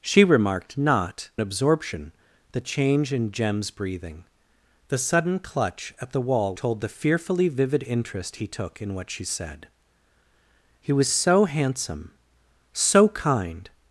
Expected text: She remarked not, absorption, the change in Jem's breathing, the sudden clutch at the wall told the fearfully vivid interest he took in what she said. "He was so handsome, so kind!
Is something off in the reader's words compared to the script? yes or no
no